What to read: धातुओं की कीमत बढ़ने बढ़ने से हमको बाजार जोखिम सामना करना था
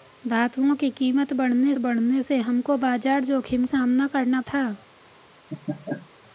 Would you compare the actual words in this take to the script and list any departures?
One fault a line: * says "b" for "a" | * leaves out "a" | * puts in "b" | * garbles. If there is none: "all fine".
all fine